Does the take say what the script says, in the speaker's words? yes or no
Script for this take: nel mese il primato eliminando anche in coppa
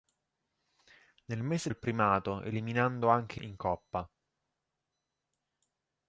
yes